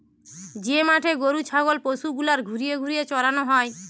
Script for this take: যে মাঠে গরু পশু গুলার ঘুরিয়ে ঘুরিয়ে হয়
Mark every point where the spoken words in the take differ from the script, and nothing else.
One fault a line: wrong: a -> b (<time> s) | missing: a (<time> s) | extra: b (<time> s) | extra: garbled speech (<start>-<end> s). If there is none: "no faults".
extra: ছাগল (1.4 s)
extra: চরানো (3.1 s)